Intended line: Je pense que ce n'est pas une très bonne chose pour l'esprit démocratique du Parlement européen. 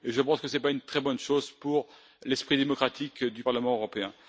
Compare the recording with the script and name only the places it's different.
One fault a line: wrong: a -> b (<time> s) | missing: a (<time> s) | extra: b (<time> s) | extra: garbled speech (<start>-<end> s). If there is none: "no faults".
no faults